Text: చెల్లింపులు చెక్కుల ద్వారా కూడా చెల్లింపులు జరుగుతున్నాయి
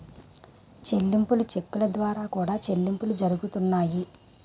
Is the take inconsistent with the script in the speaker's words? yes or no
no